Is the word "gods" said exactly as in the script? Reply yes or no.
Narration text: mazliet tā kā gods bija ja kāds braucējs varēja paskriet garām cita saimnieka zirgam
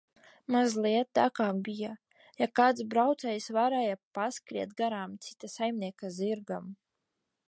no